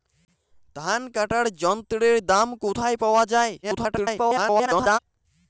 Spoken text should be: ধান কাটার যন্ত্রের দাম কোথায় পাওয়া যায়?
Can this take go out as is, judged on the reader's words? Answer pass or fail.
fail